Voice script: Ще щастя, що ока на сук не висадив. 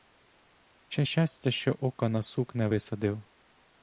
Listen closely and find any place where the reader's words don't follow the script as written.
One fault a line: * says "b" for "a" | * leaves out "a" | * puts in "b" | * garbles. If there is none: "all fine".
all fine